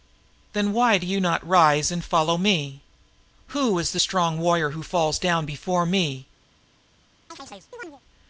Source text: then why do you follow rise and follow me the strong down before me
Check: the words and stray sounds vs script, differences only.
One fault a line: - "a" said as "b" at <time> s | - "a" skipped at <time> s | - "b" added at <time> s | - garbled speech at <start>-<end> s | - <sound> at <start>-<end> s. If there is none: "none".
- "follow" said as "not" at 1.2 s
- "who is" added at 3.5 s
- "warrior who falls" added at 4.4 s
- chirp at 7.3-8.0 s